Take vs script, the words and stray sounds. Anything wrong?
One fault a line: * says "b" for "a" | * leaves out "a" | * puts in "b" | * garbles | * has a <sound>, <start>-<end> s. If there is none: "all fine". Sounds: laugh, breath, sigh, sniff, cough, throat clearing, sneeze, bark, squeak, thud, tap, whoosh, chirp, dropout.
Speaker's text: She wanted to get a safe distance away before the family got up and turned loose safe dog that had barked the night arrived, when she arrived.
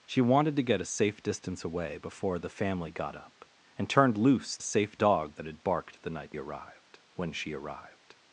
all fine